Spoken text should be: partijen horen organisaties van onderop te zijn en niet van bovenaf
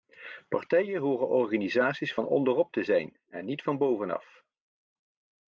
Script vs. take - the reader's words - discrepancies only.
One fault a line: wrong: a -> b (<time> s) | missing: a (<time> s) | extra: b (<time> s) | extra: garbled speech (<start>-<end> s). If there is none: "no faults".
no faults